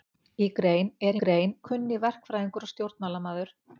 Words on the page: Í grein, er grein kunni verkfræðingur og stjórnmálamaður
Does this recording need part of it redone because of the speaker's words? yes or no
no